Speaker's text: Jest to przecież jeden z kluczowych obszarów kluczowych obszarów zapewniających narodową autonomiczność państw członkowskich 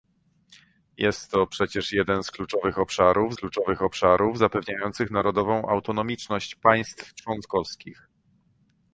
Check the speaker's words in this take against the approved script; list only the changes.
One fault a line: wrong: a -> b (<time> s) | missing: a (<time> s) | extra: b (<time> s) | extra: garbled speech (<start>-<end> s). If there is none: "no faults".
no faults